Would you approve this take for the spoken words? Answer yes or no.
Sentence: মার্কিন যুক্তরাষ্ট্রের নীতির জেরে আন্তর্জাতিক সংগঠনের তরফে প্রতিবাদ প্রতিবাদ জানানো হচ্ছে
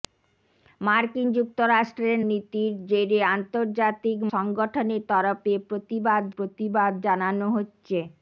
yes